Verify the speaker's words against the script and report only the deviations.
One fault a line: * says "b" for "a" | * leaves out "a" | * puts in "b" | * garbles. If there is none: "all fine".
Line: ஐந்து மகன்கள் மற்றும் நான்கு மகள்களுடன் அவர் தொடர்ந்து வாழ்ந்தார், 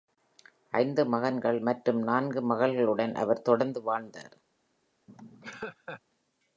all fine